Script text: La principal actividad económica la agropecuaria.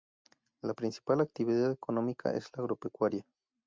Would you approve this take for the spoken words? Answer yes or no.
no